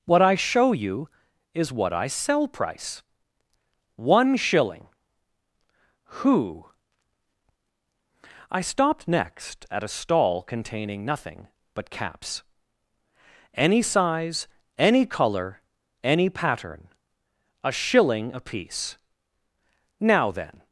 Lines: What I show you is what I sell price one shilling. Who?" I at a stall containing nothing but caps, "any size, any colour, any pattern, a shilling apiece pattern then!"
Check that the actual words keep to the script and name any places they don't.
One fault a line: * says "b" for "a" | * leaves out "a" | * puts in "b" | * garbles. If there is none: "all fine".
* puts in "stopped next"
* says "now" for "pattern"